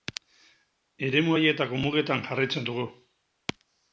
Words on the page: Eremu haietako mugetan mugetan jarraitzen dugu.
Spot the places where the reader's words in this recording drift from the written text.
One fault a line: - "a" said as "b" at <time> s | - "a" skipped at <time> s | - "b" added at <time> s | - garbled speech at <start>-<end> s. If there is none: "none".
- "mugetan" skipped at 2.2 s